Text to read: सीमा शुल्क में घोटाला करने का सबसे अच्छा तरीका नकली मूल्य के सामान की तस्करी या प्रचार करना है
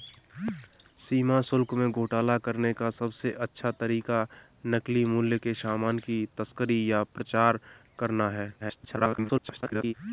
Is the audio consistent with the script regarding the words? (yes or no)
no